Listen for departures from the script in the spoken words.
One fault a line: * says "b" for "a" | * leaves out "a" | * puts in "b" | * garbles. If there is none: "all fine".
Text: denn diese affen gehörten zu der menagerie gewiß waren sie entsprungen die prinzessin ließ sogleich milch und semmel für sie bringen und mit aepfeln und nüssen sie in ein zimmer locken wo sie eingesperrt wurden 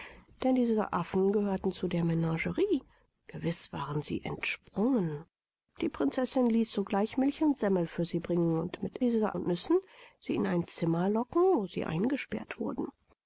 * says "diese" for "aepfeln"